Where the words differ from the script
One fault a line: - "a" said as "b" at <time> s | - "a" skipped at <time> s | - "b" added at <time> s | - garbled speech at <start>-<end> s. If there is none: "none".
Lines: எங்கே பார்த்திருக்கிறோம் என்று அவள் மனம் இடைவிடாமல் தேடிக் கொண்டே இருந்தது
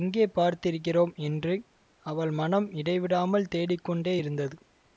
none